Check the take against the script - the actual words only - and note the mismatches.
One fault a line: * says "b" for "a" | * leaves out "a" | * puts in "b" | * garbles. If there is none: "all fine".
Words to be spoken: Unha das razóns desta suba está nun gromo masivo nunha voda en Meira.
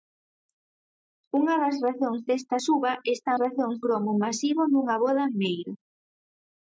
* says "razóns" for "nun"